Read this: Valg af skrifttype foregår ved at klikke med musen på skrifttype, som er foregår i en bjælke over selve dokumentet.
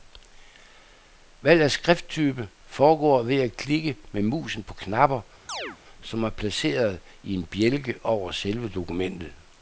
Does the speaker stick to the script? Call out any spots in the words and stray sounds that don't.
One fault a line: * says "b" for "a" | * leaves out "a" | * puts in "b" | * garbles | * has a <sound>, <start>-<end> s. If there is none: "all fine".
* says "knapper" for "skrifttype"
* has a chirp, 5.5-5.8 s
* says "placeret" for "foregår"